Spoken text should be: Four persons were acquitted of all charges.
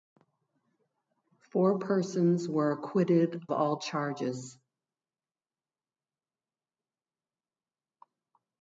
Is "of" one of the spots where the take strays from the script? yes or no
yes